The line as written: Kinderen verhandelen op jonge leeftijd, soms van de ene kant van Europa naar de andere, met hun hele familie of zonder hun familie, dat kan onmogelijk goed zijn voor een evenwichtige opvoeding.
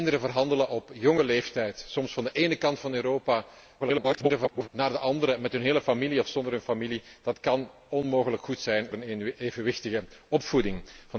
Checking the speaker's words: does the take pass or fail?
fail